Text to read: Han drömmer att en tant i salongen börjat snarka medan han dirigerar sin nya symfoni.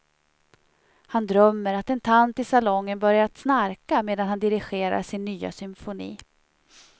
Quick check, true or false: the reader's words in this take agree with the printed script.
true